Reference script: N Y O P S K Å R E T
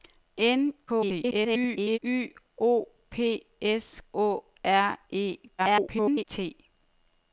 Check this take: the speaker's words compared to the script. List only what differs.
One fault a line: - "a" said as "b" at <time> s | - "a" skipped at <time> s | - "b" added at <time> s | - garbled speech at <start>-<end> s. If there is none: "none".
- garbled speech at 0.9-2.0 s
- "K" skipped at 4.0 s
- garbled speech at 5.6-6.2 s